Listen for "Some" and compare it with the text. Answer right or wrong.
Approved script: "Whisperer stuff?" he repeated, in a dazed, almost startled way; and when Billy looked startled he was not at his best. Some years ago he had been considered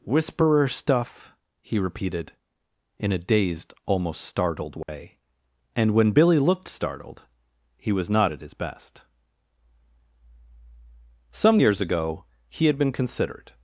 right